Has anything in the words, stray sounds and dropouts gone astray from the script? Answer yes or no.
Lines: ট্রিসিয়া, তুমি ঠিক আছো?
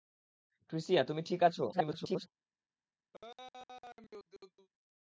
yes